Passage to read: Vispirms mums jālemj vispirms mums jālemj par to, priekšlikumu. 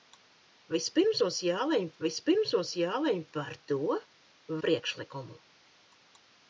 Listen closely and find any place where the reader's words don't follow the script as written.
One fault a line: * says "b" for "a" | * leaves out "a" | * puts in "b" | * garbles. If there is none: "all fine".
all fine